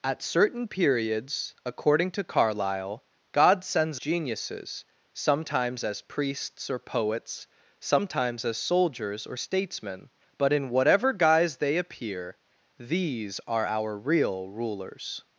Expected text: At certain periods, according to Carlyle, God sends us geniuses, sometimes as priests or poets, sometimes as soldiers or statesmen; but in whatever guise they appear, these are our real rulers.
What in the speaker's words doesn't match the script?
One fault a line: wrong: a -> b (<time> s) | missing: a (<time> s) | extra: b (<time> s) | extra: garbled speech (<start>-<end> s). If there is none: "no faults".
missing: us (4.0 s)